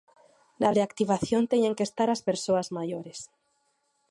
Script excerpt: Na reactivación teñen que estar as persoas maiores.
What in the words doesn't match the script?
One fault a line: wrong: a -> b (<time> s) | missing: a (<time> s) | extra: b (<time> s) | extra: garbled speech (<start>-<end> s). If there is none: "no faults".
no faults